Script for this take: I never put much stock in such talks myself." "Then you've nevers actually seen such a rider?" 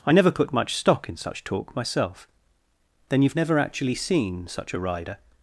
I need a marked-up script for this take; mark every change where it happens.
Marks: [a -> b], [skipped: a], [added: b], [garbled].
I never put much stock in such [talks -> talk] myself." "Then you've [nevers -> never] actually seen such a rider?"